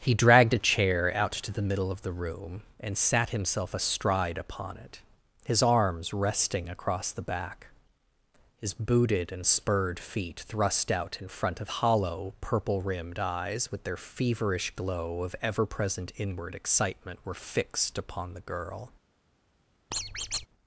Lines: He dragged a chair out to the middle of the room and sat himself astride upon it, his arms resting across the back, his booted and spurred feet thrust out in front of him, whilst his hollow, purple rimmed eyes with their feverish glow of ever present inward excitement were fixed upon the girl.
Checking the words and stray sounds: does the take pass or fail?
fail